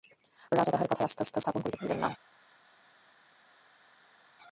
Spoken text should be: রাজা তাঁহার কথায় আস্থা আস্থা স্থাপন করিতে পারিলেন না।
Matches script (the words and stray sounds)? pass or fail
pass